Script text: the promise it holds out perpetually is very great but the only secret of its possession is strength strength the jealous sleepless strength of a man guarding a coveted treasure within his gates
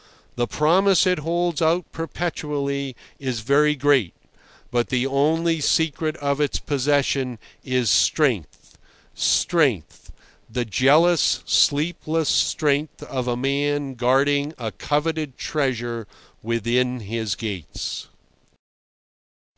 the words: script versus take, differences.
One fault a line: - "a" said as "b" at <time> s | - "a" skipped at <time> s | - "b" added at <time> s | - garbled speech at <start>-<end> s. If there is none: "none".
none